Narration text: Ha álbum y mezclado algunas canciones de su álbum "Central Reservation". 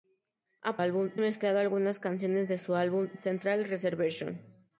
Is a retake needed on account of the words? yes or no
no